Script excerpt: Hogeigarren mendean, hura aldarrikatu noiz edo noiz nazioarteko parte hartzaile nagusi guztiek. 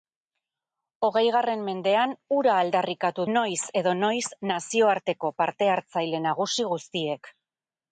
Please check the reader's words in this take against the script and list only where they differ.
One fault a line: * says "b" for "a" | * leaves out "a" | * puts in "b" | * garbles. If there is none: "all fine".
all fine